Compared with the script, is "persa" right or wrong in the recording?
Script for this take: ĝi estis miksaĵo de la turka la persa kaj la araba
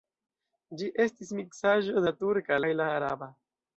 wrong